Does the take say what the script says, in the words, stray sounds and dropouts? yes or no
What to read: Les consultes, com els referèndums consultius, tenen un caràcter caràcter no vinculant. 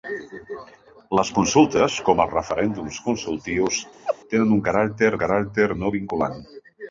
no